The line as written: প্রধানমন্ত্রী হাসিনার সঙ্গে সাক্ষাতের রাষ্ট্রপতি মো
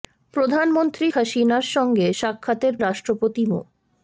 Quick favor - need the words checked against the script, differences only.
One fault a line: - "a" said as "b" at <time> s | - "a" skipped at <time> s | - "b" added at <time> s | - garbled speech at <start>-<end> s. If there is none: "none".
none